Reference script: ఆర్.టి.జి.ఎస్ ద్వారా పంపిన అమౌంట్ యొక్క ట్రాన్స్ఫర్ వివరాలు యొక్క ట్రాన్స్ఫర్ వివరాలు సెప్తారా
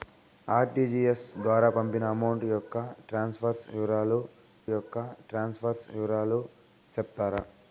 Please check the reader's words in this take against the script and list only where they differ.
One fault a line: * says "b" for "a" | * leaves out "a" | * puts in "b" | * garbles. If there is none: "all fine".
all fine